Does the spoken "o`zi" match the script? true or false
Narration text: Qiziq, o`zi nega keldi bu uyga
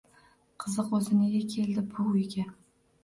true